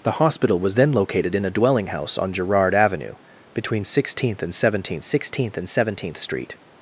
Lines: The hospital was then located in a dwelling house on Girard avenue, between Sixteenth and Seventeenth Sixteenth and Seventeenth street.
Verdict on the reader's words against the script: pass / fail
pass